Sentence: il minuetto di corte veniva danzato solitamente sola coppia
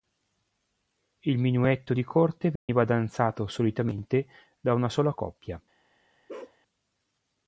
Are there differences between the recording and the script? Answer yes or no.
yes